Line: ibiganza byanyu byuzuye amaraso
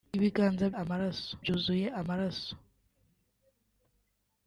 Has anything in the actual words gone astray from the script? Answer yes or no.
yes